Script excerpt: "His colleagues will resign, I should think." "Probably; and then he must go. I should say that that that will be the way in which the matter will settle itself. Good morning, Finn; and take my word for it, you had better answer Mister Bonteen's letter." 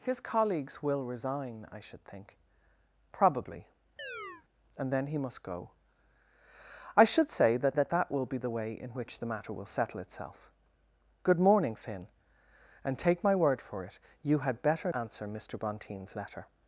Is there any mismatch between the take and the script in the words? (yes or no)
no